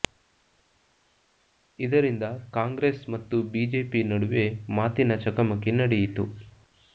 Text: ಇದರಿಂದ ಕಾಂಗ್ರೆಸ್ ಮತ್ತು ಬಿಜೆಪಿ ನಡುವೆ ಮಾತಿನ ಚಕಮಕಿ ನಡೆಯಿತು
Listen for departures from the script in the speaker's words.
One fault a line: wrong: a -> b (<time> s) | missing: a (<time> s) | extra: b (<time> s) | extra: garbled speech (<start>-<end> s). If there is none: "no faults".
no faults